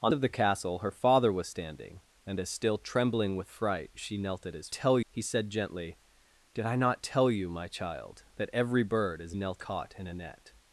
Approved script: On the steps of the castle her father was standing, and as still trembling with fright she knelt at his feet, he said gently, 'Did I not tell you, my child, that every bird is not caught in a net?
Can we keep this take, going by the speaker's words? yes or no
no